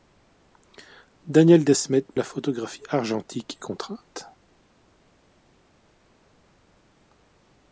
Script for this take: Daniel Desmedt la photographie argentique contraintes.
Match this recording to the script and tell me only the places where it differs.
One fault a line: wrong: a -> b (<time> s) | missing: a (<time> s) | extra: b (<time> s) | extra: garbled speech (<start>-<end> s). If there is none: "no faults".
no faults